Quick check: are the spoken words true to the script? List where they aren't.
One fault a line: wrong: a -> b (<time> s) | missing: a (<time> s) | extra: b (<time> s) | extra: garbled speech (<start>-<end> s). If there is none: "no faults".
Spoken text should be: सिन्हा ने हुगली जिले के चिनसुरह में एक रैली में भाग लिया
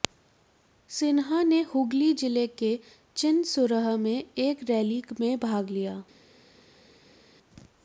no faults